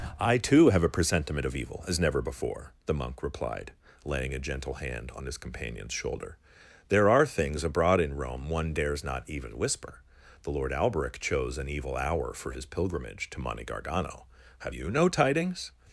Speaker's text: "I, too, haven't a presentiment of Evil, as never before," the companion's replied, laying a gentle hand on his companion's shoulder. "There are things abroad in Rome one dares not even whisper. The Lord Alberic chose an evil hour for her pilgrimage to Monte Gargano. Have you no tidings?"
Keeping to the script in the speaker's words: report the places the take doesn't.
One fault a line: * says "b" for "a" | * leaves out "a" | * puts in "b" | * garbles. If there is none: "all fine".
* says "have" for "haven't"
* says "monk" for "companion's"
* says "his" for "her"